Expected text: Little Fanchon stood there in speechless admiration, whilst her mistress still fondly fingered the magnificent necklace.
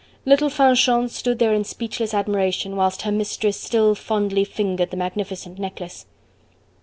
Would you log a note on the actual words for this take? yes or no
no